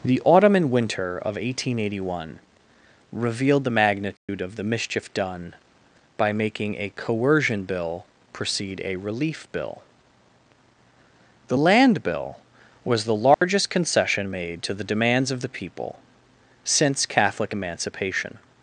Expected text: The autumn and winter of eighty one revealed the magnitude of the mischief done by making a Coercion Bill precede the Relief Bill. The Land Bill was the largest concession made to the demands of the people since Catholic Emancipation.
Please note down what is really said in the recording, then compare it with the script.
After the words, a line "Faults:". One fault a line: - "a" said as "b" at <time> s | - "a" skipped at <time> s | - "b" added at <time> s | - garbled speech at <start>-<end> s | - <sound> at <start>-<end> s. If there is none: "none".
The autumn and winter of eighteen eighty one revealed the magnitude of the mischief done by making a Coercion Bill precede a Relief Bill. The Land Bill was the largest concession made to the demands of the people since Catholic Emancipation.
Faults:
- "eighteen" added at 1.4 s
- dropout at 4.2-4.3 s
- "the" said as "a" at 8.8 s
- dropout at 13.3-13.4 s